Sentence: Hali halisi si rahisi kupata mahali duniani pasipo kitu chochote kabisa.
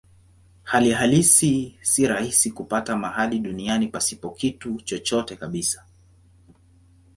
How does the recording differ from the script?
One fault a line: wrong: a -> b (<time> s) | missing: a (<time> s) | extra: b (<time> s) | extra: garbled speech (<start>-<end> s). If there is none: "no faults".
no faults